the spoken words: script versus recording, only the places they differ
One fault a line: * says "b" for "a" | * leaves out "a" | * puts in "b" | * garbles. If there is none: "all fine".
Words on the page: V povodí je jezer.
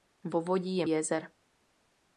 all fine